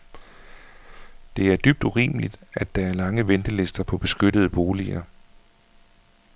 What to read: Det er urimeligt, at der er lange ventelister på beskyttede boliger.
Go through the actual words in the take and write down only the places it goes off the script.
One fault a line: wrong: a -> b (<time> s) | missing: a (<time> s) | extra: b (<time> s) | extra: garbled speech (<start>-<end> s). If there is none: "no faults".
extra: dybt (1.6 s)